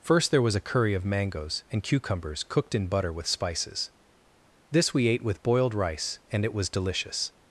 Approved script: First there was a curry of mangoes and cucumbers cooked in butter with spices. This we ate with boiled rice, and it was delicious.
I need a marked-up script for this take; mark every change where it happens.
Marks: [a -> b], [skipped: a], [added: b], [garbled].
First there was a curry of mangoes and cucumbers cooked in butter with spices. This we ate with boiled rice, and it was delicious.